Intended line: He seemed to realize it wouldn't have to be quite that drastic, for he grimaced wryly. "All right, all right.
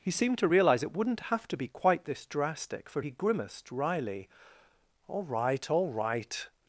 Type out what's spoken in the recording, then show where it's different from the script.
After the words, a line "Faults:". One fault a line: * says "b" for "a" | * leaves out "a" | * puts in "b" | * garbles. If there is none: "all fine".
He seemed to realize it wouldn't have to be quite this drastic, for he grimaced wryly. "All right, all right.
Faults:
* says "this" for "that"